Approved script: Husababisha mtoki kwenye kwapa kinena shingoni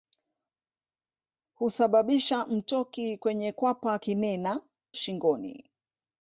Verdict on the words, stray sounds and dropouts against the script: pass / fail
pass